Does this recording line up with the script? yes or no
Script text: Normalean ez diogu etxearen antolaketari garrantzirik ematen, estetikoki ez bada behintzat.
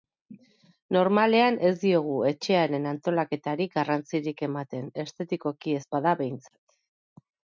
yes